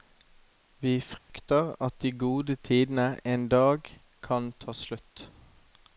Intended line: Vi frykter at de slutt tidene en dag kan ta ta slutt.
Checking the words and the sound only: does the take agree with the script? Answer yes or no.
no